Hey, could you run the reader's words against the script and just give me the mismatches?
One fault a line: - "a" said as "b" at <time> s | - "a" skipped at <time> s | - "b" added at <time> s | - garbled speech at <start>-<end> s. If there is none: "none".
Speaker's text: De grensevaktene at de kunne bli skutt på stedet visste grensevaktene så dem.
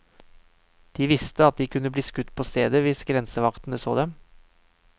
- "grensevaktene" said as "visste" at 1.1 s
- "visste" said as "hvis" at 2.9 s